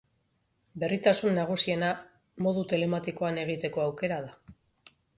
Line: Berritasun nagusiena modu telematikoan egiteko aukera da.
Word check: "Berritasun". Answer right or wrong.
right